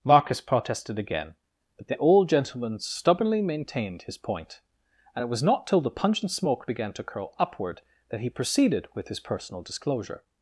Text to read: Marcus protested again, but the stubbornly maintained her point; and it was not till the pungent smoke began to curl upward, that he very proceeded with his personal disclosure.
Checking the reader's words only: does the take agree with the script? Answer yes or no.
no